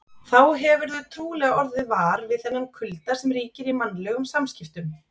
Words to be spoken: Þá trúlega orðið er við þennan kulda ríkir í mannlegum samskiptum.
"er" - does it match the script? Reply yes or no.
no